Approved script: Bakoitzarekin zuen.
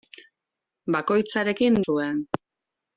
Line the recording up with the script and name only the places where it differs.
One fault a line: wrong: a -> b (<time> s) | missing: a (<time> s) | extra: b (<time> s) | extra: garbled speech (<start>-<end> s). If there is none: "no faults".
no faults